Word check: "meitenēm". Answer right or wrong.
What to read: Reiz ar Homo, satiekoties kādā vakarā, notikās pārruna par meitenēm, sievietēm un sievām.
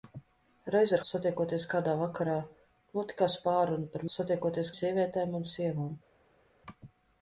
wrong